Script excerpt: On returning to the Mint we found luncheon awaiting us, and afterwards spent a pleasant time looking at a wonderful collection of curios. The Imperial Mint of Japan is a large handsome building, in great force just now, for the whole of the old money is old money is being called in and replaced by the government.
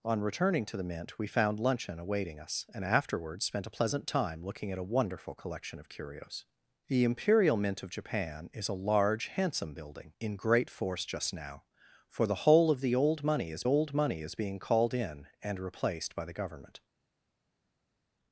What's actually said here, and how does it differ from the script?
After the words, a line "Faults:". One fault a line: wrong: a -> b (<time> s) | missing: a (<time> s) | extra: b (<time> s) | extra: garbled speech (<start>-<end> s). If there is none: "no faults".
On returning to the Mint we found luncheon awaiting us, and afterwards spent a pleasant time looking at a wonderful collection of curios. The Imperial Mint of Japan is a large handsome building, in great force just now, for the whole of the old money is old money is being called in and replaced by the government.
Faults:
no faults